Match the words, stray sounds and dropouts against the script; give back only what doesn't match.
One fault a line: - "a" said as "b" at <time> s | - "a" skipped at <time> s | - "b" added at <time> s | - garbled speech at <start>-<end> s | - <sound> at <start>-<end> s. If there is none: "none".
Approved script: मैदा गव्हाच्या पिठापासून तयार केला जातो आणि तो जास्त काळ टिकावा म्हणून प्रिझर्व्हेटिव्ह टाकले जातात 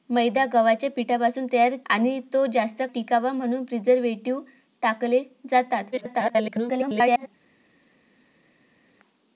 - "केला जातो" skipped at 1.8 s
- "काळ" skipped at 2.8 s
- garbled speech at 5.9-7.3 s